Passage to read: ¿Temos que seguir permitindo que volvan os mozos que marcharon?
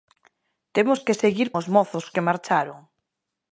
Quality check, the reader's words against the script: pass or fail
fail